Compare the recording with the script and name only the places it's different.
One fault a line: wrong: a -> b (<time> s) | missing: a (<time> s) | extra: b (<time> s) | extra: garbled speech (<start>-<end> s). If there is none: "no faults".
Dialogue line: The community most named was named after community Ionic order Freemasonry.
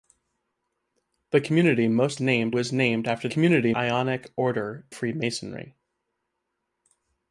no faults